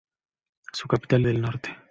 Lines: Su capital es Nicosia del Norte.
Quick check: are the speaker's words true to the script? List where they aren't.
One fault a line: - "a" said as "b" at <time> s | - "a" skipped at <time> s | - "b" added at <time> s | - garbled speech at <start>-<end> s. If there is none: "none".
- "es Nicosia" skipped at 1.3 s